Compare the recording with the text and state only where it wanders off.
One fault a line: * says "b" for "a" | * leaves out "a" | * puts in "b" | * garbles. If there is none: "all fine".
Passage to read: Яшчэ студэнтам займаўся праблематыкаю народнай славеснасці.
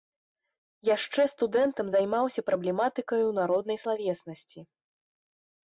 all fine